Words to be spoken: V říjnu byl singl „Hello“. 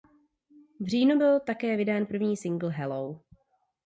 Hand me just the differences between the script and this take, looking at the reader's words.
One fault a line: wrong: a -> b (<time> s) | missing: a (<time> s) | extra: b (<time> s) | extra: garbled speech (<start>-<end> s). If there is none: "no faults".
extra: také vydán první (1.4 s)